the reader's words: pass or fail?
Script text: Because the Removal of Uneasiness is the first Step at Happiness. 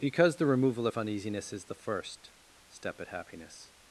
pass